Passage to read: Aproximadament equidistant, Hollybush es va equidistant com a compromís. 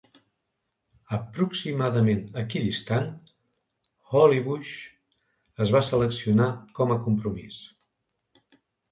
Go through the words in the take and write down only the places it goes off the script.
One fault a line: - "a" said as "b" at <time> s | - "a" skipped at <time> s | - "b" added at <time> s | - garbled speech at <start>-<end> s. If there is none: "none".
- "equidistant" said as "seleccionar" at 5.9 s